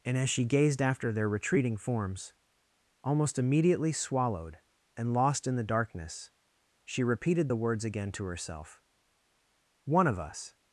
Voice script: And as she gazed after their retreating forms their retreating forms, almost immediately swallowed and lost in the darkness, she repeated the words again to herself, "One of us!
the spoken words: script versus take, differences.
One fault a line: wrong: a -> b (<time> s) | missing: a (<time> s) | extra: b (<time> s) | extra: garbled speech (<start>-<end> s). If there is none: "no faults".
missing: their retreating forms (2.3 s)